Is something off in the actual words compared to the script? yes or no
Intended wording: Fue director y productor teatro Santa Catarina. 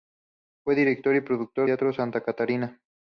no